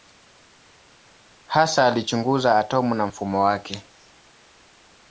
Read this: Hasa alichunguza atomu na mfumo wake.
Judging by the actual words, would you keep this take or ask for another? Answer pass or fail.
pass